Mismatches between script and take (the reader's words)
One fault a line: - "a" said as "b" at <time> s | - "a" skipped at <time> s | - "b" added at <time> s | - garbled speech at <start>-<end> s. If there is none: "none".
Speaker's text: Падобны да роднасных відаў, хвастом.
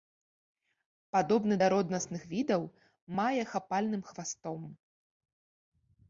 - "мае хапальным" added at 3.2 s